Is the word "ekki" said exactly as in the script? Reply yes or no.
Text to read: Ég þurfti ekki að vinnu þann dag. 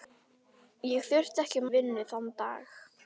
yes